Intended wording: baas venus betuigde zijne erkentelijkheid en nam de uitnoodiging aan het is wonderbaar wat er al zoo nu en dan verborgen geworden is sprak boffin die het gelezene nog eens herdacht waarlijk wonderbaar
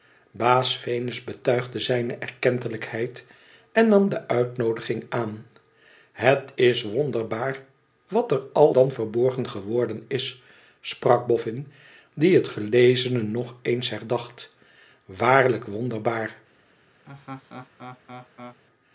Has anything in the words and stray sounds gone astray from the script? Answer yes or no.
yes